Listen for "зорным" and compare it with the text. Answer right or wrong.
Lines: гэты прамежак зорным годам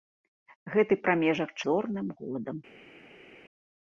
right